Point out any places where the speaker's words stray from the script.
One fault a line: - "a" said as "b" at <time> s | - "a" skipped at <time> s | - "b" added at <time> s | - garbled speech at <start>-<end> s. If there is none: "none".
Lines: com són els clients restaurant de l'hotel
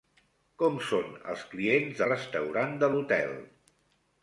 none